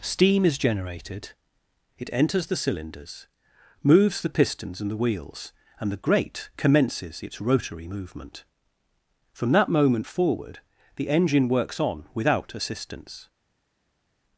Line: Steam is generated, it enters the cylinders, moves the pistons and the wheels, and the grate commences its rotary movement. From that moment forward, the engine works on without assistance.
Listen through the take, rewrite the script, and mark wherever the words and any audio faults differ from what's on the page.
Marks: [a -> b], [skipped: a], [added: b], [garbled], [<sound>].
Steam is generated, it enters the cylinders, moves the pistons and the wheels, and the grate commences its rotary movement. From that moment forward, the engine works on without assistance.